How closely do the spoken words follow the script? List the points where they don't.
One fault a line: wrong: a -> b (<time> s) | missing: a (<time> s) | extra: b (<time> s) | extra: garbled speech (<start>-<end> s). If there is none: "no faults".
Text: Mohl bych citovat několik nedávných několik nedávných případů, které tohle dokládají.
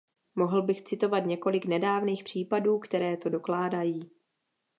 missing: několik nedávných (2.2 s)
wrong: tohle -> to (3.2 s)